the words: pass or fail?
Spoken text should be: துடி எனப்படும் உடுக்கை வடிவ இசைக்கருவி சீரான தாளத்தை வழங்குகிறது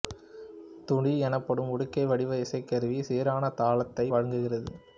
pass